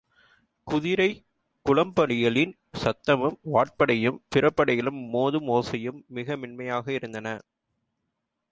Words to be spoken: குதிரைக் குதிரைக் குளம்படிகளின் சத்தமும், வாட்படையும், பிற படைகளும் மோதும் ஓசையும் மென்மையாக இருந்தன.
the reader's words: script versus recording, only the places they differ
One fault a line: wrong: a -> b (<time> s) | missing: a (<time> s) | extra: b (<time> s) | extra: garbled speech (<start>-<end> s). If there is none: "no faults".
missing: குதிரைக் (1.2 s)
extra: மிக (6.1 s)